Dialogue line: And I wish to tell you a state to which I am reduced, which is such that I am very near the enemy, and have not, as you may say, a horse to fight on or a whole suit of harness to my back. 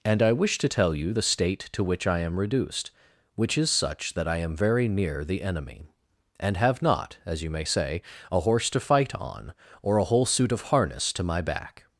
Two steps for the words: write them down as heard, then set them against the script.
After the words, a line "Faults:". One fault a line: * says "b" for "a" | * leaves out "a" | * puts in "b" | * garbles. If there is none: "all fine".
And I wish to tell you the state to which I am reduced, which is such that I am very near the enemy, and have not, as you may say, a horse to fight on or a whole suit of harness to my back.
Faults:
* says "the" for "a"